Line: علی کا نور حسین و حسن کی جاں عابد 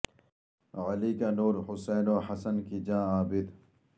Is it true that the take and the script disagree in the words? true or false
false